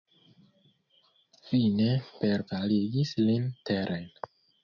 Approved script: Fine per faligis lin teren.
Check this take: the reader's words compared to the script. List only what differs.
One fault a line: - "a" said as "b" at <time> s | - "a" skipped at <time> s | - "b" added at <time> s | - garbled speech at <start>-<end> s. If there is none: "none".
none